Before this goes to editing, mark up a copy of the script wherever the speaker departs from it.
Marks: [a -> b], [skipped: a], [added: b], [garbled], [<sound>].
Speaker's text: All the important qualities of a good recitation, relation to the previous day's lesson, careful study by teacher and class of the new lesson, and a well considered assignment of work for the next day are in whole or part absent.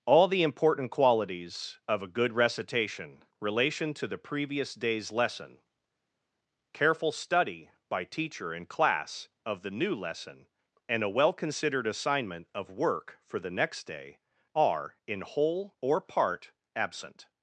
All the important qualities of a good recitation, relation to the previous day's lesson, careful study by teacher and class of the new lesson, and a well considered assignment of work for the next day are in whole or part absent.